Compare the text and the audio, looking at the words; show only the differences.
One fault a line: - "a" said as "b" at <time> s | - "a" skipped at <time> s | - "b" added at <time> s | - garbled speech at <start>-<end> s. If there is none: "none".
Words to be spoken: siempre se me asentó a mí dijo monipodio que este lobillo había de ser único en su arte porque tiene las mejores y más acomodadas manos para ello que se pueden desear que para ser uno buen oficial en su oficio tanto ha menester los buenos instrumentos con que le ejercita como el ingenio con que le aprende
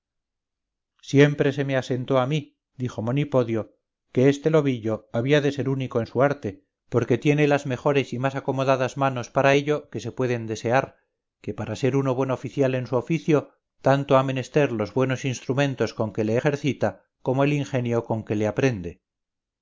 none